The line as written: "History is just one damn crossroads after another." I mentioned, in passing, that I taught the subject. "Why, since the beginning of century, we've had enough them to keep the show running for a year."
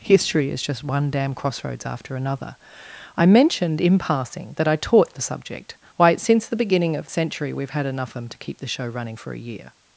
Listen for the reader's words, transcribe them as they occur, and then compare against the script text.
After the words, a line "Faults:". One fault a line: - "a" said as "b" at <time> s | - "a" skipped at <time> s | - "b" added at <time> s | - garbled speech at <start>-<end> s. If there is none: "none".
"History is just one damn crossroads after another." I mentioned, in passing, that I taught the subject. "Why, since the beginning of century, we've had enough them to keep the show running for a year."
Faults:
none